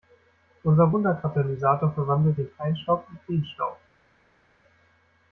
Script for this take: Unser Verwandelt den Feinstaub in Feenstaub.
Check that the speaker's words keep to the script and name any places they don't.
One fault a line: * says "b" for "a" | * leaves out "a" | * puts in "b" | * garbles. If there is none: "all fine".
* puts in "Wunderkatalysator"